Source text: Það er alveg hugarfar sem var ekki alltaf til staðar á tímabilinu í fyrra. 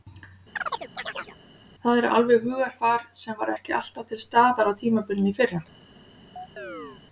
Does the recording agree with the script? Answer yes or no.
yes